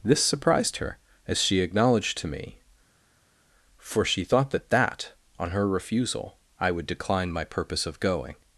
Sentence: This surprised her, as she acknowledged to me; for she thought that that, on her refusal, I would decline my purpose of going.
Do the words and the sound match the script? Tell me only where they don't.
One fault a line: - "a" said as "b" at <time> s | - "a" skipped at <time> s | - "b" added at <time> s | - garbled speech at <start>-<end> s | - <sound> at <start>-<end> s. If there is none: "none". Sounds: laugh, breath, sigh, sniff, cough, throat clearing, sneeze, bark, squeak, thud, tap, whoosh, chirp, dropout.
none